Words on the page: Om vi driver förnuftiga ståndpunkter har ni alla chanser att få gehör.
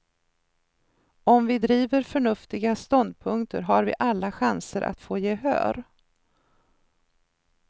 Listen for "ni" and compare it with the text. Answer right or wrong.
wrong